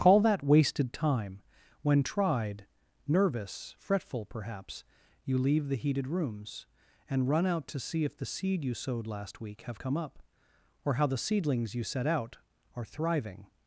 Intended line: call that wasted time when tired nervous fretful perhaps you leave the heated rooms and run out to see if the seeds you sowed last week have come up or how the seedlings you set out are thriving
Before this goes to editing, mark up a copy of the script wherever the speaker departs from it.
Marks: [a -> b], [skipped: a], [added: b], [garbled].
call that wasted time when [tired -> tried] nervous fretful perhaps you leave the heated rooms and run out to see if the [seeds -> seed] you sowed last week have come up or how the seedlings you set out are thriving